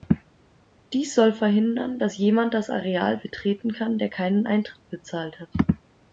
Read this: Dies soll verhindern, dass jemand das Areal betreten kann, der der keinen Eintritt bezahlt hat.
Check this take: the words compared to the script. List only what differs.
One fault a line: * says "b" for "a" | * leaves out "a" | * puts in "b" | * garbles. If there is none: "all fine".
* leaves out "der"